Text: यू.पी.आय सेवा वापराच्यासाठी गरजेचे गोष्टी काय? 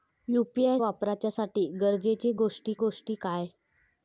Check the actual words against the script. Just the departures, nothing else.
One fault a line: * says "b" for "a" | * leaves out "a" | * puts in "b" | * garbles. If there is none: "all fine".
* leaves out "सेवा"
* puts in "गोष्टी"